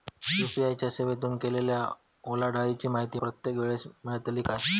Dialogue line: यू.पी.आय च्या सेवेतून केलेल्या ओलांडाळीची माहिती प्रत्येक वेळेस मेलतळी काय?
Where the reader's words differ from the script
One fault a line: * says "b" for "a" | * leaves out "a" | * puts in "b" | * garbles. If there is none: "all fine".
all fine